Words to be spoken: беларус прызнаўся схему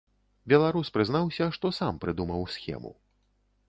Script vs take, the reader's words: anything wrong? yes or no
yes